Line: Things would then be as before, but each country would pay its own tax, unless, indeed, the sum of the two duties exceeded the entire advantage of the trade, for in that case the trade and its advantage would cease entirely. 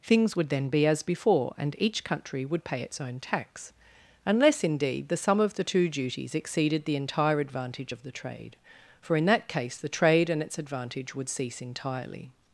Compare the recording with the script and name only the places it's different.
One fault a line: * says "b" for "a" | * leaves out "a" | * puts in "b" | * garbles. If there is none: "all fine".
* says "and" for "but"